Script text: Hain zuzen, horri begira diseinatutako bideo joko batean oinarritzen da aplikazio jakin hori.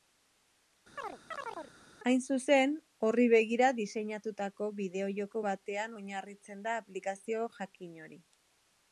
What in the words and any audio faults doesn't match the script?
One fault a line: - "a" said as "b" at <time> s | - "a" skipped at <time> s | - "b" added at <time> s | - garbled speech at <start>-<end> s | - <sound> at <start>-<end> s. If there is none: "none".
- chirp at 1.0-1.7 s